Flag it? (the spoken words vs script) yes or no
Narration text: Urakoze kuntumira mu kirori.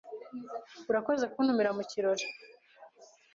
no